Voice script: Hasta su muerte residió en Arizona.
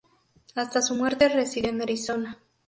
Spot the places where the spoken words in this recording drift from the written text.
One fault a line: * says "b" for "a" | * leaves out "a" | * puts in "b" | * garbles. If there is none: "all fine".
all fine